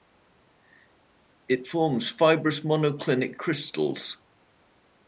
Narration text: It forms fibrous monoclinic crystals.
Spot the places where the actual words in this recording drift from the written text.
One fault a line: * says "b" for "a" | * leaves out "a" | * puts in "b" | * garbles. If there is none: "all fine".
all fine